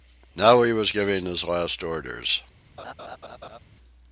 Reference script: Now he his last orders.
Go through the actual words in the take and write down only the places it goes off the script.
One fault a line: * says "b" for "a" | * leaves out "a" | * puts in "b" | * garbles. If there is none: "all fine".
* puts in "was giving"